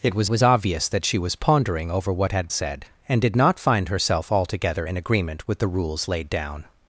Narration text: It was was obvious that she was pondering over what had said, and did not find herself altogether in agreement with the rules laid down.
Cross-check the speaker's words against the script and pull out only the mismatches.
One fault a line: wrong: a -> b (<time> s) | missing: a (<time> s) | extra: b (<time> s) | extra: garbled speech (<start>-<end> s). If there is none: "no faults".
no faults